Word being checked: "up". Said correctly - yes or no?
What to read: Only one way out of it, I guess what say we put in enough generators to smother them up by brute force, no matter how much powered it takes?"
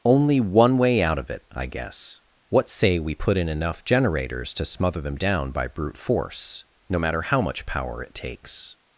no